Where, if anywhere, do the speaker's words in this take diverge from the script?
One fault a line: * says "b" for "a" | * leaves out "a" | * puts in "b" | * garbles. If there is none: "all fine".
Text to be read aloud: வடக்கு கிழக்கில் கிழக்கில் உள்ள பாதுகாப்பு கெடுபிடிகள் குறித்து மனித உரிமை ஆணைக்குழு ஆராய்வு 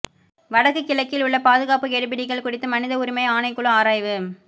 * leaves out "கிழக்கில்"